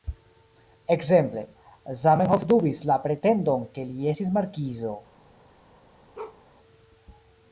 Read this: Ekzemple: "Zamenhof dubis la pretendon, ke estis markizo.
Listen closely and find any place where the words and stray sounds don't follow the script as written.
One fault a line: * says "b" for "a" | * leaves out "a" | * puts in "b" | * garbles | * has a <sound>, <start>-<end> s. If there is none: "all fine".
* puts in "li"
* has a bark, 6.1-6.4 s